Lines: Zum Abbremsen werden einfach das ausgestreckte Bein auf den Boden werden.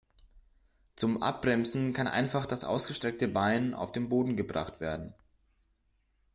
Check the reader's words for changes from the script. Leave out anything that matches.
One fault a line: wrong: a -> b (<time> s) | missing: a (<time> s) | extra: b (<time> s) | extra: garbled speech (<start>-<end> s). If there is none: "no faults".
wrong: werden -> kann (1.9 s)
extra: gebracht (4.4 s)